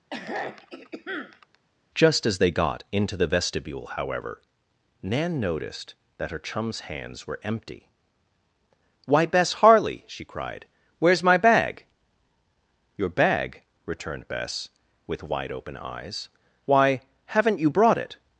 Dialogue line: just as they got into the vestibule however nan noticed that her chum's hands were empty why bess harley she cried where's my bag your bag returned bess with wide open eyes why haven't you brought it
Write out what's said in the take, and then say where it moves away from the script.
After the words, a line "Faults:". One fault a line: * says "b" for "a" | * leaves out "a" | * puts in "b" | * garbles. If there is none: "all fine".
just as they got into the vestibule however nan noticed that her chum's hands were empty why bess harley she cried where's my bag your bag returned bess with wide open eyes why haven't you brought it
Faults:
all fine